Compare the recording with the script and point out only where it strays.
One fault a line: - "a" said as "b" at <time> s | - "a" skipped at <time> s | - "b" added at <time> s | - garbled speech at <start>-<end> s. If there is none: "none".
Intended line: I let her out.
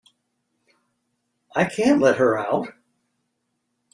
- "can't" added at 1.6 s